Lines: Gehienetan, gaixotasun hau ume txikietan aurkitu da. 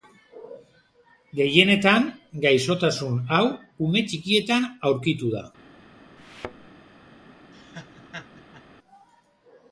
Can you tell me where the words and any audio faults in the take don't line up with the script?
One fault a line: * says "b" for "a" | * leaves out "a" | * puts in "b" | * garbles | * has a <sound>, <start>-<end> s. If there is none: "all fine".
* has a thud, 6.2-6.7 s
* has a laugh, 7.5-8.6 s